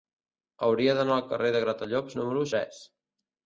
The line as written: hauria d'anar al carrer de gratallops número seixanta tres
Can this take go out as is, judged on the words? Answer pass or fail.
fail